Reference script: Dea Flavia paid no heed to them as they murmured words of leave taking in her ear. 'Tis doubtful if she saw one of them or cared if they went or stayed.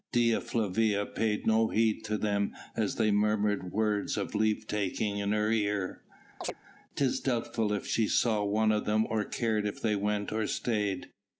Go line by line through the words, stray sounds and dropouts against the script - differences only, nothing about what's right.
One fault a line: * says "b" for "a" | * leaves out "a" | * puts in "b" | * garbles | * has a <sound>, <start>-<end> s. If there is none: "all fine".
* has a chirp, 6.4-6.6 s